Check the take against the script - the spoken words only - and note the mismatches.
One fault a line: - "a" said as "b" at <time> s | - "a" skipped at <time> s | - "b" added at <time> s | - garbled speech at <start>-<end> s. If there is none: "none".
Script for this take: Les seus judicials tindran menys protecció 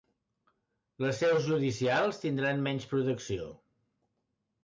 none